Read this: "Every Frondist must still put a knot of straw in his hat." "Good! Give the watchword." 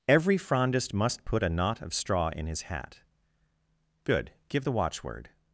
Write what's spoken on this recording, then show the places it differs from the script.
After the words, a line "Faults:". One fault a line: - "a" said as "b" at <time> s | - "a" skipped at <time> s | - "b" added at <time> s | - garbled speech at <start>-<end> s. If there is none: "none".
"Every Frondist must put a knot of straw in his hat." "Good! Give the watchword."
Faults:
- "still" skipped at 1.2 s